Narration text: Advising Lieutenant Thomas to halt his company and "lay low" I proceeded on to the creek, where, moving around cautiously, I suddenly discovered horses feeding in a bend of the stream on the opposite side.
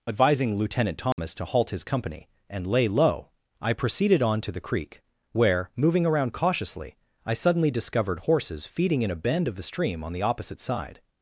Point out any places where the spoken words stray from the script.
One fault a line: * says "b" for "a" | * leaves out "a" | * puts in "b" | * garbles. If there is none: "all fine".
all fine